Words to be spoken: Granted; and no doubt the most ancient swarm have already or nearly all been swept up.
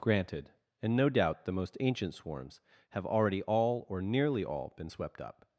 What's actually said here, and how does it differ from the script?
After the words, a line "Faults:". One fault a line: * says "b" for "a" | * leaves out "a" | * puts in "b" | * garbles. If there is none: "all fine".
Granted; and no doubt the most ancient swarms have already all or nearly all been swept up.
Faults:
* says "swarms" for "swarm"
* puts in "all"